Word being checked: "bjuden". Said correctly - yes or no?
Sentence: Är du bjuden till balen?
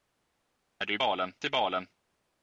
no